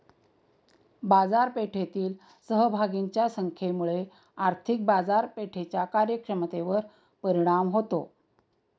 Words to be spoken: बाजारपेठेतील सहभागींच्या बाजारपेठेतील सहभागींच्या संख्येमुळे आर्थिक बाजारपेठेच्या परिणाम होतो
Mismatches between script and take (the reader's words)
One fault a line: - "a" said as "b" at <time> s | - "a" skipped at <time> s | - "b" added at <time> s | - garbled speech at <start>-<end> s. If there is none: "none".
- "बाजारपेठेतील सहभागींच्या" skipped at 3.3 s
- "कार्यक्षमतेवर" added at 5.9 s